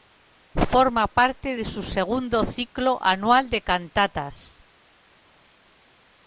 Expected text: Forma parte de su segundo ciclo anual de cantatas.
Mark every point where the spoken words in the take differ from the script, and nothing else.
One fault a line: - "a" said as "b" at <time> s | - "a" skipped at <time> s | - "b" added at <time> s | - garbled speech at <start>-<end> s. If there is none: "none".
none